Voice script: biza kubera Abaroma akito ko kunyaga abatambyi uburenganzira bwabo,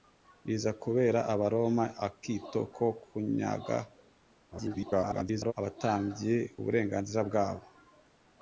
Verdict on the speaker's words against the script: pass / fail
fail